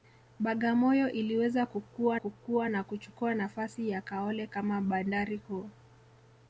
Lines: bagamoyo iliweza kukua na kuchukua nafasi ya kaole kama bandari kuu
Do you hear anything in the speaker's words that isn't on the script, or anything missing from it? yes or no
yes